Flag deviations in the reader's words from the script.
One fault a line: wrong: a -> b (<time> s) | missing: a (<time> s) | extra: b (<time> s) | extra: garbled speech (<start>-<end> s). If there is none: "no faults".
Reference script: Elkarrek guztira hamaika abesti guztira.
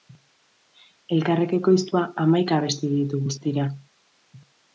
wrong: guztira -> ekoiztua (1.6 s)
extra: ditu (2.9 s)